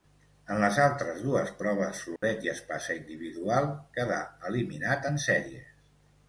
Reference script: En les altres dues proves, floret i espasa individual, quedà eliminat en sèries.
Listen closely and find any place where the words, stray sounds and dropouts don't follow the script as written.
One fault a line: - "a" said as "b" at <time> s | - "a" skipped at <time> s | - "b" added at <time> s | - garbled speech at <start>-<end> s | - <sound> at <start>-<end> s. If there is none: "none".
- dropout at 2.2-2.2 s